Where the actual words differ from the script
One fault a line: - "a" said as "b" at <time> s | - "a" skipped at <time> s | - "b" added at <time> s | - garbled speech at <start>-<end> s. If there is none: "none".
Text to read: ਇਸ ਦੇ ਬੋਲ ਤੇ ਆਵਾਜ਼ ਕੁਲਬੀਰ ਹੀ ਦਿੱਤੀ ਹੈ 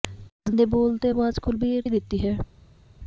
none